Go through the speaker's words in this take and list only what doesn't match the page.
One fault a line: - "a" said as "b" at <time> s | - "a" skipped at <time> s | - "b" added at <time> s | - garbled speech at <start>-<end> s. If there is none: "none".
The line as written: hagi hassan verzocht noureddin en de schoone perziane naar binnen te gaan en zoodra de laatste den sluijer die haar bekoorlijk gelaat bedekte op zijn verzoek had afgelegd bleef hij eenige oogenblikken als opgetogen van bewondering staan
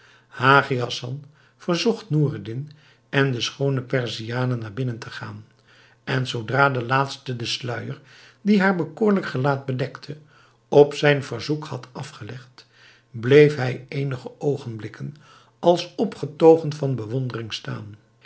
none